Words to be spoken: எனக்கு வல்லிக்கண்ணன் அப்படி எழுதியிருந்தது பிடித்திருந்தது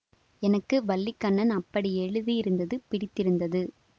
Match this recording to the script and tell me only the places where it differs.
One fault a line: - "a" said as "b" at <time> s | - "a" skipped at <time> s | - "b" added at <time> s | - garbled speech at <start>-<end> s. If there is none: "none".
none